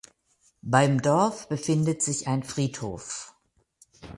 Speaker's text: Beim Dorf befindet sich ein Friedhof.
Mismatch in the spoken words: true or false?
false